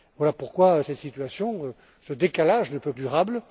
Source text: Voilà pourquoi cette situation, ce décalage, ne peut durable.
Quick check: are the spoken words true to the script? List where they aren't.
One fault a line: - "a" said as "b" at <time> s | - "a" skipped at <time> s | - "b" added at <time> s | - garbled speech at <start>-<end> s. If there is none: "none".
none